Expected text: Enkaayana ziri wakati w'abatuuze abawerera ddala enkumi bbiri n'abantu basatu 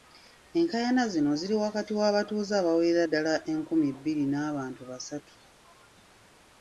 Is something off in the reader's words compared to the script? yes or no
yes